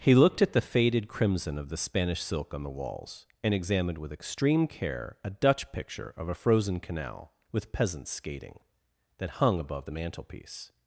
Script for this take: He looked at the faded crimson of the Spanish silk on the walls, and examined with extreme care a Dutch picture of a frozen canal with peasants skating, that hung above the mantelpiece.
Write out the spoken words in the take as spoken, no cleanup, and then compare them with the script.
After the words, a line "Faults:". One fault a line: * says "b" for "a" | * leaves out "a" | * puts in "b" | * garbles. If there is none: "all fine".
He looked at the faded crimson of the Spanish silk on the walls, and examined with extreme care a Dutch picture of a frozen canal with peasants skating, that hung above the mantelpiece.
Faults:
all fine